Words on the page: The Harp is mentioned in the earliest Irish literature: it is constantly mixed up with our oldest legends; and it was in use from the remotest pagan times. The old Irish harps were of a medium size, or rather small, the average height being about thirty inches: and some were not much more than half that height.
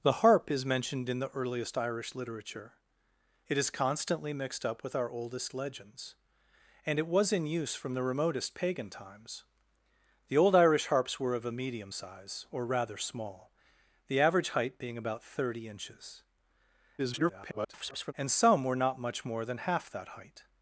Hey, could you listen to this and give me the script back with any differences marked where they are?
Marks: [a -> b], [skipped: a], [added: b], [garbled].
The Harp is mentioned in the earliest Irish literature: it is constantly mixed up with our oldest legends; and it was in use from the remotest pagan times. The old Irish harps were of a medium size, or rather small, the average height being about thirty inches: [garbled] and some were not much more than half that height.